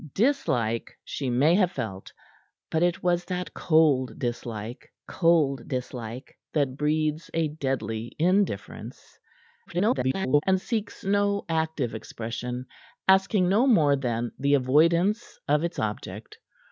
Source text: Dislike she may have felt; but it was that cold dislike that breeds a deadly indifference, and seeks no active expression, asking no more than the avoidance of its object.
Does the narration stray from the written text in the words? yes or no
yes